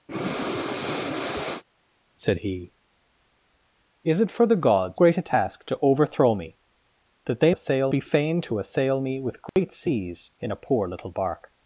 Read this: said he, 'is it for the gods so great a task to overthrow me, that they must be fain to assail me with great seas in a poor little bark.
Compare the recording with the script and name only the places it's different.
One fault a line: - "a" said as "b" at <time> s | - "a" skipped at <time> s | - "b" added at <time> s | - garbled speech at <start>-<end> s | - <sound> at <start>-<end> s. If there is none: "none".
- breath at 0.1-1.6 s
- "so" skipped at 5.0 s
- "must" said as "assail" at 7.5 s
- dropout at 9.5-9.6 s